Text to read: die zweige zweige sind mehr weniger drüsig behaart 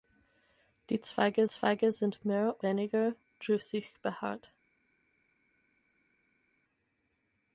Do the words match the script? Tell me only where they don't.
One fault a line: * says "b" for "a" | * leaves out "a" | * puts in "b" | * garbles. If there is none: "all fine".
all fine